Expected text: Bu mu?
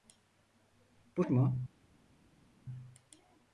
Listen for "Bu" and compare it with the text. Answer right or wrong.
right